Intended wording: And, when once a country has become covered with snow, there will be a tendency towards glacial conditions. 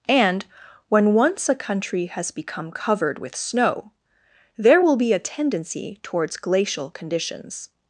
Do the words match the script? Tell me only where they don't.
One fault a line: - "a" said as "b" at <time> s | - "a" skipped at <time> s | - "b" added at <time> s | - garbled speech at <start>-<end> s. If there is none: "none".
none